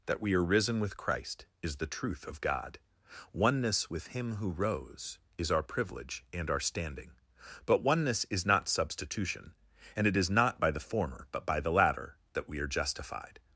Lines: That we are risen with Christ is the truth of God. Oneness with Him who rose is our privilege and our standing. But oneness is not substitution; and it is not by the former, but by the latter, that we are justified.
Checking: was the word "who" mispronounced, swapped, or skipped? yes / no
no